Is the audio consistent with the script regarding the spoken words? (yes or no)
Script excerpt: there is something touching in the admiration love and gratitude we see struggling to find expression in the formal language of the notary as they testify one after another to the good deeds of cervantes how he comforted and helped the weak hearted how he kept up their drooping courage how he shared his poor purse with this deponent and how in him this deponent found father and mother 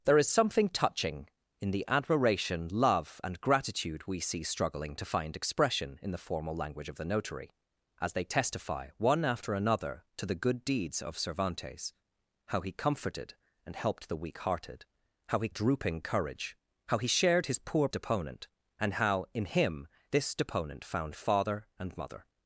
no